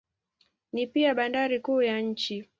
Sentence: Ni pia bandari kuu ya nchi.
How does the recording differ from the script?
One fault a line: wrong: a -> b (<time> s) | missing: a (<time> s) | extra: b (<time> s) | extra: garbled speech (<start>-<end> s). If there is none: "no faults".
no faults